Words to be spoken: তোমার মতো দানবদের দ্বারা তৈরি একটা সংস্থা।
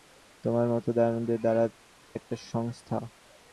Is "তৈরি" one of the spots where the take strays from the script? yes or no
yes